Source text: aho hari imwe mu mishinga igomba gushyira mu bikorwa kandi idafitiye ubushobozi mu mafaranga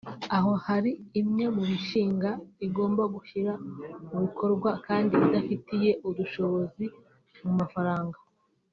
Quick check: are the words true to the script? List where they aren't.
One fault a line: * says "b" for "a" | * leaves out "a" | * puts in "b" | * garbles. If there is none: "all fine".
all fine